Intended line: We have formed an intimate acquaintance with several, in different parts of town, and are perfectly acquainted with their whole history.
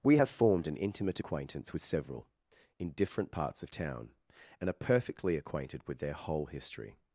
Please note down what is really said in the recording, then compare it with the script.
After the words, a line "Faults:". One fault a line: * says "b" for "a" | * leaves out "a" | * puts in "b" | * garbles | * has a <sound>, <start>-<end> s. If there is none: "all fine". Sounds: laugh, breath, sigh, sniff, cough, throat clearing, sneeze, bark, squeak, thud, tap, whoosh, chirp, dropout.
We have formed an intimate acquaintance with several, in different parts of town, and are perfectly acquainted with their whole history.
Faults:
all fine